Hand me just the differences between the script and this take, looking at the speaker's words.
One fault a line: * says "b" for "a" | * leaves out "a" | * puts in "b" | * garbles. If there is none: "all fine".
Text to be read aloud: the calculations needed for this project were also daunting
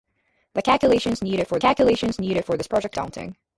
* puts in "calculations needed for"
* leaves out "were also"